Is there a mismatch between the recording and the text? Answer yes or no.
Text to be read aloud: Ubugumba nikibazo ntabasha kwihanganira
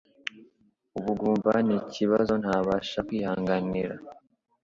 no